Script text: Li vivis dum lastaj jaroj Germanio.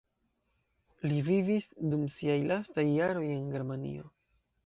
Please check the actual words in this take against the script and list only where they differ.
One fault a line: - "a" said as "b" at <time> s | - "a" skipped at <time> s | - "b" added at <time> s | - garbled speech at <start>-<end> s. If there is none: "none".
- "siaj" added at 2.2 s
- "en" added at 3.4 s